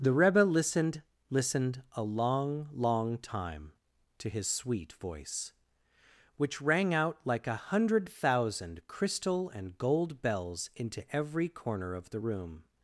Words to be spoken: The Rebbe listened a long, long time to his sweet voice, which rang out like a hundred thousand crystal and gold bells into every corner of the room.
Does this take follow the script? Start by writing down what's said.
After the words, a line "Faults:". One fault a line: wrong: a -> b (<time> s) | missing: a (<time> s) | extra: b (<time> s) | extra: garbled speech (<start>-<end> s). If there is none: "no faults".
The Rebbe listened listened a long, long time to his sweet voice, which rang out like a hundred thousand crystal and gold bells into every corner of the room.
Faults:
extra: listened (1.3 s)